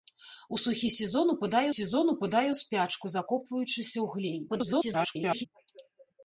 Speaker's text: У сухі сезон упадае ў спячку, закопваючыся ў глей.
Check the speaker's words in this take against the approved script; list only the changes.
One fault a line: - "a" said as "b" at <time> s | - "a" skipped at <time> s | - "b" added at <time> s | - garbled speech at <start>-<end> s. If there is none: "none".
- "сезон упадае" added at 1.7 s
- garbled speech at 4.5-5.5 s